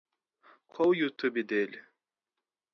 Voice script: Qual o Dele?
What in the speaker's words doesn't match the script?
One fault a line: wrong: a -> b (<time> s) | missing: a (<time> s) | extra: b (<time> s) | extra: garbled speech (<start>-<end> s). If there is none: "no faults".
extra: YouTube (0.9 s)